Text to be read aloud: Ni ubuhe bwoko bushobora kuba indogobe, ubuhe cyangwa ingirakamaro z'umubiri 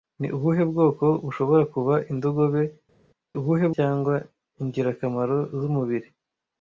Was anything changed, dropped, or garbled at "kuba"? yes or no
no